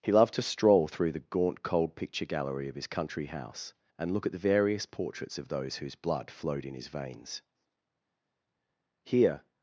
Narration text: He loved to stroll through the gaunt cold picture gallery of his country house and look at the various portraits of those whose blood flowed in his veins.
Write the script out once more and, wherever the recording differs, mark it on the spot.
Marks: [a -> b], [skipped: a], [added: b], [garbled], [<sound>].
He loved to stroll through the gaunt cold picture gallery of his country house and look at the various portraits of those whose blood flowed in his veins. [added: Here]